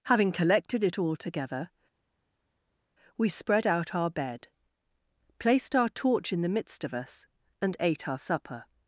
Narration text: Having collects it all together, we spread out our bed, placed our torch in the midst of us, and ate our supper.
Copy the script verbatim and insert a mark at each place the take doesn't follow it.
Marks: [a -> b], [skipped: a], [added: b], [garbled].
Having [collects -> collected] it all together, we spread out our bed, placed our torch in the midst of us, and ate our supper.